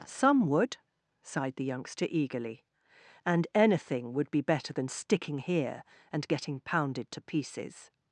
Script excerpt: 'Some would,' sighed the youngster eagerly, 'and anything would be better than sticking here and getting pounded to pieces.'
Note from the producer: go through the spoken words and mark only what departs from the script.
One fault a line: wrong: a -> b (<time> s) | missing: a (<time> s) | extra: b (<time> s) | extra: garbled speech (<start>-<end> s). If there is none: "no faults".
no faults